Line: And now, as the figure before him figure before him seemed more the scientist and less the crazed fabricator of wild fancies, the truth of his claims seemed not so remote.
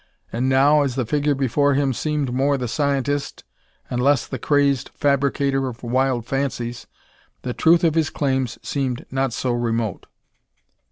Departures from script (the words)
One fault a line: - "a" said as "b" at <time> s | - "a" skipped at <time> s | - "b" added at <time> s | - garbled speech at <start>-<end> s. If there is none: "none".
- "figure before him" skipped at 1.9 s